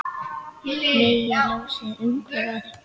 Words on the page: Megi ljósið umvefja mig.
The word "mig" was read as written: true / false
false